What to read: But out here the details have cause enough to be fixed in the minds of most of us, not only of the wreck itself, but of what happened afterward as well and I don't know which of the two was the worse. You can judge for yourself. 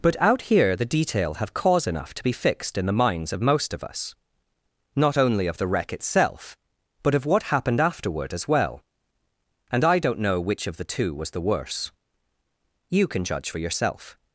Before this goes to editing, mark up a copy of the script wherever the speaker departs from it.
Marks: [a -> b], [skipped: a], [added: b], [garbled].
But out here the [details -> detail] have cause enough to be fixed in the minds of most of us, not only of the wreck itself, but of what happened afterward as well and I don't know which of the two was the worse. You can judge for yourself.